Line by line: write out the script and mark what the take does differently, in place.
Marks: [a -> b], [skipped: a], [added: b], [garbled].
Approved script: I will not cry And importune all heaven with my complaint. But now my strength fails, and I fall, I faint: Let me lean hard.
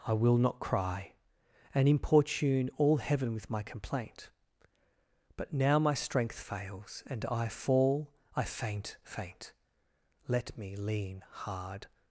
I will not cry And importune all heaven with my complaint. But now my strength fails, and I fall, I faint: [added: faint] Let me lean hard.